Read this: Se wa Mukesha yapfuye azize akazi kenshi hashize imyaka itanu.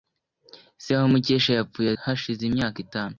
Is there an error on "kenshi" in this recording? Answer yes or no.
yes